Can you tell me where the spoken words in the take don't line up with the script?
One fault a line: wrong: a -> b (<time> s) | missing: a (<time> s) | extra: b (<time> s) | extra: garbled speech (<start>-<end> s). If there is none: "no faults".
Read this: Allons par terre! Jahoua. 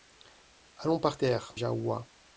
no faults